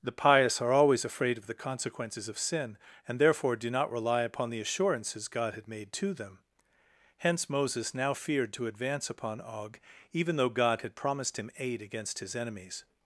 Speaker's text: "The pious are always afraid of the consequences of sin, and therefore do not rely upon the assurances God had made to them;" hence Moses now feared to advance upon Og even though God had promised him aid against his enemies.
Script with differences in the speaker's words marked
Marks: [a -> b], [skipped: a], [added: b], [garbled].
"The pious are always afraid of the consequences of sin, and therefore do not rely upon the assurances God had made to them;" hence Moses now feared to advance upon Og even though God had promised him aid against his enemies.